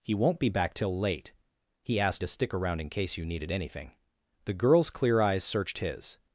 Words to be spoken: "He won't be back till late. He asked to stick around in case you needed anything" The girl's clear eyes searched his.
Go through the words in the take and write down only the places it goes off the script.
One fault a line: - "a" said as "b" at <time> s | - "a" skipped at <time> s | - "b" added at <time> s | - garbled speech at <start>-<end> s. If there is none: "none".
none